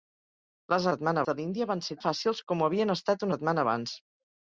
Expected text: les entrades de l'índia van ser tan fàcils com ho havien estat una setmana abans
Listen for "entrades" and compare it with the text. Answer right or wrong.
wrong